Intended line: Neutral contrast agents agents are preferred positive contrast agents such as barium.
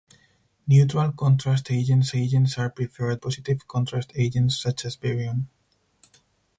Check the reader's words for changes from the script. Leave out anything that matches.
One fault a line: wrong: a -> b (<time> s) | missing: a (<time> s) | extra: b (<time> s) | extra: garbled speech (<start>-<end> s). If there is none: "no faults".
no faults